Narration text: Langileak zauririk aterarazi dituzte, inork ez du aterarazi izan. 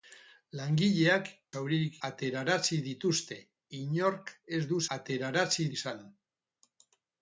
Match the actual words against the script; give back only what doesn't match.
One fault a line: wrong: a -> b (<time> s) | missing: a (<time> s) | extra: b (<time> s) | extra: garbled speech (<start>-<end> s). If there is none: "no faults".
no faults